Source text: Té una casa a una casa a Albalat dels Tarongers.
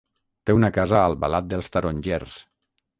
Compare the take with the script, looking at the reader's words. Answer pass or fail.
fail